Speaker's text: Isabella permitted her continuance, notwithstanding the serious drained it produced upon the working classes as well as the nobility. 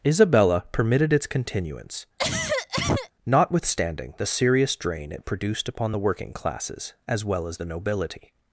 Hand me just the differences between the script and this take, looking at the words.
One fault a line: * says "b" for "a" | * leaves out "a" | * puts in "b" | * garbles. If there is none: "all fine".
* says "its" for "her"
* says "drain" for "drained"